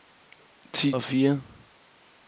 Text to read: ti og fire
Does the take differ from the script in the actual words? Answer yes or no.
no